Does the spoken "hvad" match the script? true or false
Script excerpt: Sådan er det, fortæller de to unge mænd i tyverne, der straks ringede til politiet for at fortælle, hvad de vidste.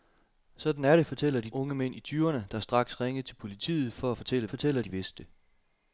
false